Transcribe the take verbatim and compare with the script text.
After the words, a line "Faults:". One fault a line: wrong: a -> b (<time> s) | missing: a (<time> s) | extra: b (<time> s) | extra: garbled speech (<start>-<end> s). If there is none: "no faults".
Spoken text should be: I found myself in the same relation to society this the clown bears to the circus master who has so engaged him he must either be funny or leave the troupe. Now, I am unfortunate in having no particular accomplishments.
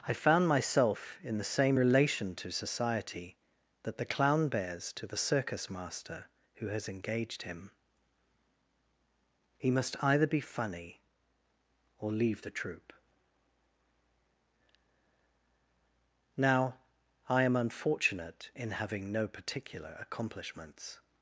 I found myself in the same relation to society that the clown bears to the circus master who has engaged him he must either be funny or leave the troupe. Now, I am unfortunate in having no particular accomplishments.
Faults:
wrong: this -> that (3.8 s)
missing: so (6.9 s)